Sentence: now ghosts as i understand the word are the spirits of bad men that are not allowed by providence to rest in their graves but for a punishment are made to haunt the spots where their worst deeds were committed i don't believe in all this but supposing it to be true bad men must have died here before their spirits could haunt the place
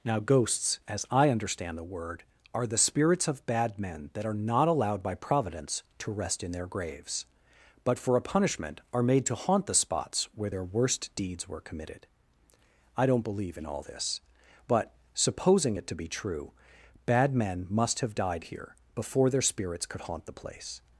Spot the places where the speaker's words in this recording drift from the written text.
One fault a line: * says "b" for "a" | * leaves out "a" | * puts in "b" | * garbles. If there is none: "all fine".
all fine